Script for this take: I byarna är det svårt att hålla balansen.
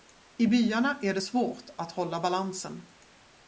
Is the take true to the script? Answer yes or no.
yes